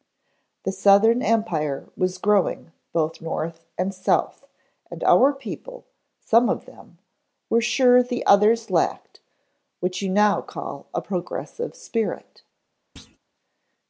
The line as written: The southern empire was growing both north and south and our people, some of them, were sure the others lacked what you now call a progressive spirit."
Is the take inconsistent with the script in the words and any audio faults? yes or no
yes